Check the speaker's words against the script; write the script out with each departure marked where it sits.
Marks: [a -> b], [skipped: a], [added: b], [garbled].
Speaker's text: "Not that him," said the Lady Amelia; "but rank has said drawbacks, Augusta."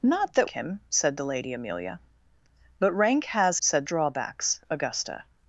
"Not that him," said the Lady Amelia; "but rank has said drawbacks, Augusta."